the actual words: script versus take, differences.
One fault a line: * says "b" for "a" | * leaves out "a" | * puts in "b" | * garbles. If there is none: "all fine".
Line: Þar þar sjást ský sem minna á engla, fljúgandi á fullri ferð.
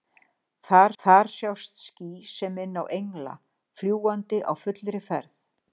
all fine